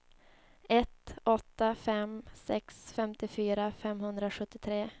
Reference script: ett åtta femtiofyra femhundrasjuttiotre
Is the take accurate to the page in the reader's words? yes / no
no